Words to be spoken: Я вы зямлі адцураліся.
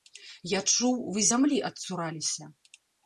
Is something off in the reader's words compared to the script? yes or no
yes